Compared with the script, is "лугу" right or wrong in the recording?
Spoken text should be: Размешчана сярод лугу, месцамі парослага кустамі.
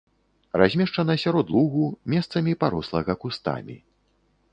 right